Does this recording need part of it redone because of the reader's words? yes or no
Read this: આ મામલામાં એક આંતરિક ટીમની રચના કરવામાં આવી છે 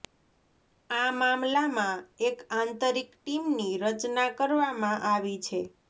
no